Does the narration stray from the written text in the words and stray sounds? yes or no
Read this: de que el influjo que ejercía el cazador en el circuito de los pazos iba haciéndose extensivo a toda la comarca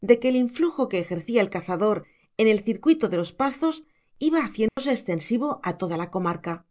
yes